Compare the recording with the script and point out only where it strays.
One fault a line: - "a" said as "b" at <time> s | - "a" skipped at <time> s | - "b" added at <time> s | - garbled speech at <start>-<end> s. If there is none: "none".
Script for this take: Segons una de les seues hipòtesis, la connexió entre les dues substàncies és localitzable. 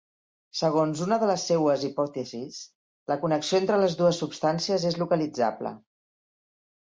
none